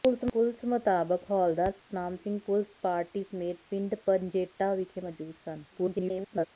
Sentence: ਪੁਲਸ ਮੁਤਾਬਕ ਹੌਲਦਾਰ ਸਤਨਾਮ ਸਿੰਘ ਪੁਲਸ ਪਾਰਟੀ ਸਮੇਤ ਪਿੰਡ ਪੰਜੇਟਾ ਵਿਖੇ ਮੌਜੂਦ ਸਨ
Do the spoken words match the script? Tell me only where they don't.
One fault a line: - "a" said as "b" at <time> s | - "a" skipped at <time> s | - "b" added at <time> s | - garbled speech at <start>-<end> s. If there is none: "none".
- garbled speech at 5.7-6.5 s